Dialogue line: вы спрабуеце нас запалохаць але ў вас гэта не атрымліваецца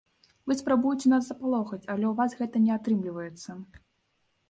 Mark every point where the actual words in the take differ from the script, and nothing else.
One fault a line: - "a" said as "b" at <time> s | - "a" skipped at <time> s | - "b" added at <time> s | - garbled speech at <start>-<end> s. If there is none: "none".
none